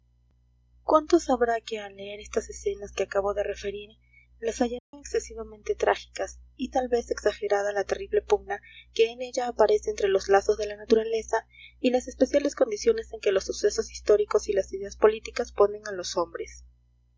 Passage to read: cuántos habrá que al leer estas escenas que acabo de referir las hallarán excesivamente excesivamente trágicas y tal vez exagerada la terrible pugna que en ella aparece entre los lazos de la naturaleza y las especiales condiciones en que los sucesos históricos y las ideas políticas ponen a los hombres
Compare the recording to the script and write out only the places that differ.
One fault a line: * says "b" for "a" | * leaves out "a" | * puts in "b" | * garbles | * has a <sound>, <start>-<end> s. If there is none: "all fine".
* has a dropout, 4.8-4.9 s
* leaves out "excesivamente"